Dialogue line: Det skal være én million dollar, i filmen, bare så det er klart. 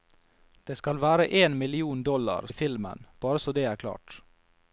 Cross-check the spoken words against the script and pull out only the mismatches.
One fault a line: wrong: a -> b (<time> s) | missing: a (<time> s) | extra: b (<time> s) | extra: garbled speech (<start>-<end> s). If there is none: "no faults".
no faults